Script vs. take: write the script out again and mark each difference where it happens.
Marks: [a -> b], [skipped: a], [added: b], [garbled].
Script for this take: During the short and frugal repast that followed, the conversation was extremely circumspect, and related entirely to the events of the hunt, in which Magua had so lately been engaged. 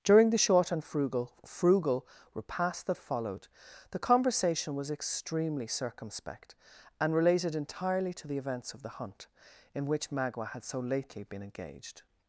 During the short and frugal [added: frugal] repast that followed, the conversation was extremely circumspect, and related entirely to the events of the hunt, in which Magua had so lately been engaged.